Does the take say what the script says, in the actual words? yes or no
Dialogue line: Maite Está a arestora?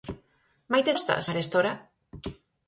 yes